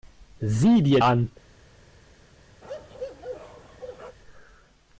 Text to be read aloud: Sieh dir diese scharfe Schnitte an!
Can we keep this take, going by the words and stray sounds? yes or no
no